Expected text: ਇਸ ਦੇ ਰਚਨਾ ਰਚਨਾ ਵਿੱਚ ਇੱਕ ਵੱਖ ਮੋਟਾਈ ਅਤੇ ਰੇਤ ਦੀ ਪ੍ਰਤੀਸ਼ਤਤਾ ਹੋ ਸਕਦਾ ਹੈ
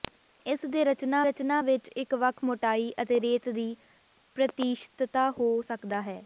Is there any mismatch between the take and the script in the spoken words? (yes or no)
no